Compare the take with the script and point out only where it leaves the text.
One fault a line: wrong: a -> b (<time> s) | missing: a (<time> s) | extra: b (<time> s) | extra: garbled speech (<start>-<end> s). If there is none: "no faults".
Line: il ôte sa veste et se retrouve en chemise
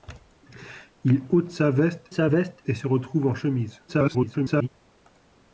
extra: sa veste (2.1 s)
extra: garbled speech (3.9-4.7 s)